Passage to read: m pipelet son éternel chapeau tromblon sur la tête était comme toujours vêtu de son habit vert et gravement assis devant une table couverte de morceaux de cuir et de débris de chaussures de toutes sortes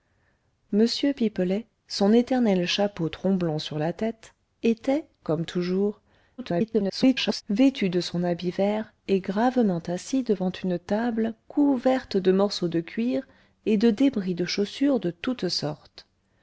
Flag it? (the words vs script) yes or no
yes